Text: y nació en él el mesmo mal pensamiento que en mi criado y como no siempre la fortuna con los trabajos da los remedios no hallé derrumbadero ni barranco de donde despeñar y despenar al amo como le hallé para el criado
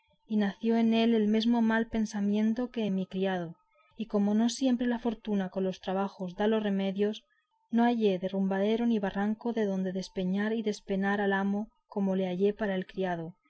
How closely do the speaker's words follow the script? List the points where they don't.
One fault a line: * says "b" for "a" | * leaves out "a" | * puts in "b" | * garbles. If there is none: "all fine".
all fine